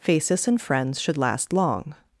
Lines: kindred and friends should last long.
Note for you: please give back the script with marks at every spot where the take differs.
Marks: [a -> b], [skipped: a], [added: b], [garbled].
[kindred -> phasis] and friends should last long.